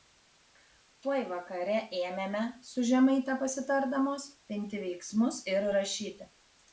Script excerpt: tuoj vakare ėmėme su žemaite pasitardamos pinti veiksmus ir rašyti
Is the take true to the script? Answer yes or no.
yes